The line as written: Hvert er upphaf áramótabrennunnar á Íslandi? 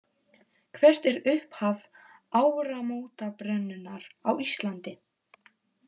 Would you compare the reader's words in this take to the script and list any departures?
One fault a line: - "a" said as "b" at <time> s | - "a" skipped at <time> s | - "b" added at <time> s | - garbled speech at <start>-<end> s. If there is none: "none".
none